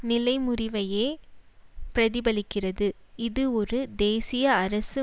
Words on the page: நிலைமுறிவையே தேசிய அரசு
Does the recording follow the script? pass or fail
fail